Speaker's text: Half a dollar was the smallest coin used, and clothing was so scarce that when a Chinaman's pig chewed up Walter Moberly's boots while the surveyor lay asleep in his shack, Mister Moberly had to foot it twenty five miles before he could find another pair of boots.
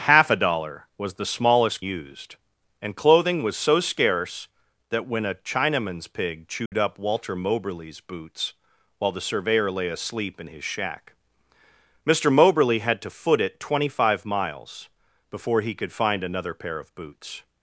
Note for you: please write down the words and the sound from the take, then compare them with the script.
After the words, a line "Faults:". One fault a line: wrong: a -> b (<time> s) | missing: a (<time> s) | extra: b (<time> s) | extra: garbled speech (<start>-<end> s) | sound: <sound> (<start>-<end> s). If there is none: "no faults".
Half a dollar was the smallest used, and clothing was so scarce that when a Chinaman's pig chewed up Walter Moberly's boots while the surveyor lay asleep in his shack, Mister Moberly had to foot it twenty five miles before he could find another pair of boots.
Faults:
missing: coin (1.8 s)
sound: dropout (6.7-6.7 s)